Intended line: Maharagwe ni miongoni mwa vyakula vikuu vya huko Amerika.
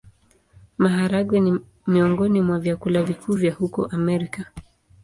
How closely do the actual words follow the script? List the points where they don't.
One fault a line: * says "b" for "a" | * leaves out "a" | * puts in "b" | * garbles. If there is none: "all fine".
all fine